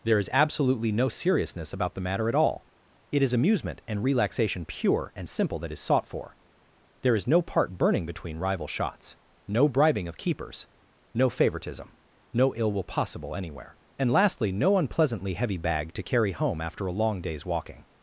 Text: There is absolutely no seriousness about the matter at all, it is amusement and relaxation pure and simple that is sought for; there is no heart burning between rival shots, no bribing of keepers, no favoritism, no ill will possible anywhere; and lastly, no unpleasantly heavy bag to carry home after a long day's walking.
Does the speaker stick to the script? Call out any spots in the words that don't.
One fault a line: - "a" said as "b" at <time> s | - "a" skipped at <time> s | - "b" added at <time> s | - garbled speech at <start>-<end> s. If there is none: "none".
- "heart" said as "part" at 7.4 s